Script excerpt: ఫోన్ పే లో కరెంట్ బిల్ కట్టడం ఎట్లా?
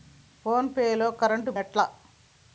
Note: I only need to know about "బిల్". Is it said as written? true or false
false